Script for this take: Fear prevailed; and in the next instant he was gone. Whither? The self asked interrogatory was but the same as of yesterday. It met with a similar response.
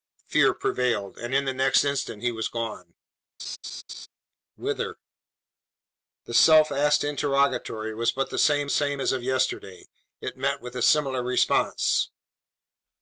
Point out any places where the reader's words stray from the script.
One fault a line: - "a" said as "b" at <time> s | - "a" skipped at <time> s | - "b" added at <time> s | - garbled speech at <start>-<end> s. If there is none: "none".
- "same" added at 8.7 s